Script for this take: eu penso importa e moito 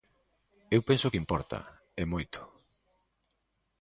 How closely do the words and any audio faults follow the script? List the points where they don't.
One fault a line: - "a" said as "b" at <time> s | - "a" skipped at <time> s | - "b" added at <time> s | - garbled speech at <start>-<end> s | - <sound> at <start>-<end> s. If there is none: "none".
- "que" added at 1.1 s